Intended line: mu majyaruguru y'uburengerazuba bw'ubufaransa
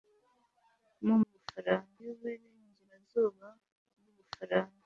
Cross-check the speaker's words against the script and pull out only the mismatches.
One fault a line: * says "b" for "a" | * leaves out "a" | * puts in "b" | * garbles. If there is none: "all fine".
* says "bw'ubufaransa" for "majyaruguru"